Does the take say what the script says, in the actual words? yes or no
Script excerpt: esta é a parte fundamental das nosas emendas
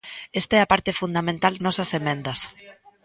no